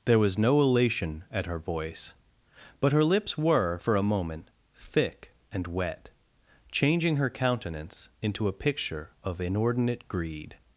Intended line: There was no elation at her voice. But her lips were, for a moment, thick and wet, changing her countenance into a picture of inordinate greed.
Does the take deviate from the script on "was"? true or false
false